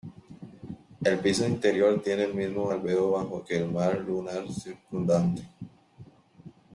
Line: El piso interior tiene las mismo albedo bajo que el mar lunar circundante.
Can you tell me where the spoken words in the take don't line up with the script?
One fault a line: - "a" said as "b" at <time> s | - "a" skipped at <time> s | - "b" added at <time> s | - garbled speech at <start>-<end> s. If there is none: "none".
- "las" said as "el" at 2.2 s